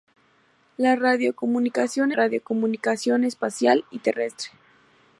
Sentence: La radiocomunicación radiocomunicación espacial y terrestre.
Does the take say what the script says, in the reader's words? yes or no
yes